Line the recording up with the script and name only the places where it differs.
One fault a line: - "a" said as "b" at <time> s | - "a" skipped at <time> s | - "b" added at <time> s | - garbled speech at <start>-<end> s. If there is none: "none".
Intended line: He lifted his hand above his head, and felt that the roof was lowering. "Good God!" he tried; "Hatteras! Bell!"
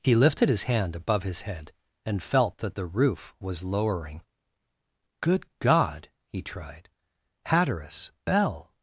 none